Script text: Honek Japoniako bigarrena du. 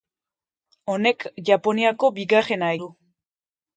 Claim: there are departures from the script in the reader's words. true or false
false